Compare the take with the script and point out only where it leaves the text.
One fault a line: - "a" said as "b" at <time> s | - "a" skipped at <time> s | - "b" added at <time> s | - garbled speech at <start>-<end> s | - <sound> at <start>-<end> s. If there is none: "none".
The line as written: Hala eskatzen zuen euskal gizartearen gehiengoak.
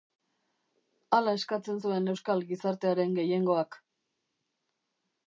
none